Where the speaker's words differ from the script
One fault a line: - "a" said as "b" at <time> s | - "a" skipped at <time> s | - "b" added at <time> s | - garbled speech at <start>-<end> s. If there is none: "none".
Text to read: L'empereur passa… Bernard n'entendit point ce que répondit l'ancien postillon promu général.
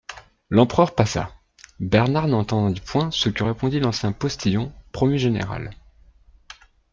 none